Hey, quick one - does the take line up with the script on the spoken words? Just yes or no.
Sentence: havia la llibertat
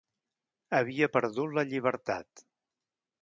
no